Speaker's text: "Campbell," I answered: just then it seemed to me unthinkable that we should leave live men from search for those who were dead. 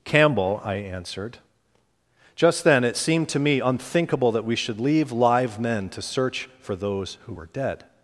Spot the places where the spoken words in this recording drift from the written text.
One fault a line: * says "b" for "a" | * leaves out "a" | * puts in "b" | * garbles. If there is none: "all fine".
* says "to" for "from"